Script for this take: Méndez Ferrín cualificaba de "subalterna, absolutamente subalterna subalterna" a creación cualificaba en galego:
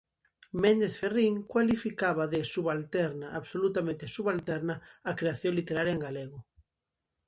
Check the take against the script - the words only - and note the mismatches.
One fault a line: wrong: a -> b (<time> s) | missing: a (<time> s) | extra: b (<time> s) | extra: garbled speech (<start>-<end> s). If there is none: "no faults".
missing: subalterna (4.8 s)
wrong: cualificaba -> literaria (5.6 s)